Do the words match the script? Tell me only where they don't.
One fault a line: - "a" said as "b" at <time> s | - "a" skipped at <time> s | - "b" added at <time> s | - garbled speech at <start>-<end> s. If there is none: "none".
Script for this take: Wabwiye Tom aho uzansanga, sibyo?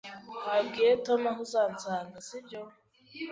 none